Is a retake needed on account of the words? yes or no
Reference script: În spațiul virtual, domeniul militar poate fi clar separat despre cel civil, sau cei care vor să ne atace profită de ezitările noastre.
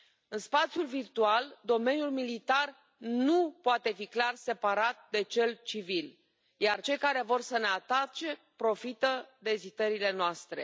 yes